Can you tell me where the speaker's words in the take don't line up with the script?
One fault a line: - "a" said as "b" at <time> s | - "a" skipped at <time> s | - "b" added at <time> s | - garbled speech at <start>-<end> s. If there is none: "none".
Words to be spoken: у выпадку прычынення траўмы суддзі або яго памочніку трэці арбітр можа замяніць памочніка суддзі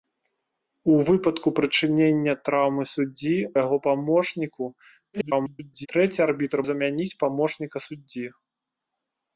- "або" skipped at 3.4 s
- garbled speech at 5.1-5.9 s
- "можа" skipped at 6.6 s